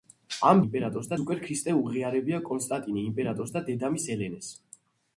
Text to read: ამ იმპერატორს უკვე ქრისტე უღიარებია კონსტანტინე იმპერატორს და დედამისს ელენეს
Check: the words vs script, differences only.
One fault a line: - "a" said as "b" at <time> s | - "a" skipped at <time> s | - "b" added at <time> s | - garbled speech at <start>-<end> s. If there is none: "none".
none